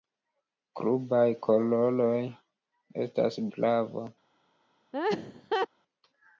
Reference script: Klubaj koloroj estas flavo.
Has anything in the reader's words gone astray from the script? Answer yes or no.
no